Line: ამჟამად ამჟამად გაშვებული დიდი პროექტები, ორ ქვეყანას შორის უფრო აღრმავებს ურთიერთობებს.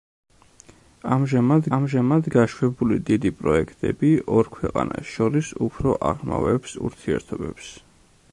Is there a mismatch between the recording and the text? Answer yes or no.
no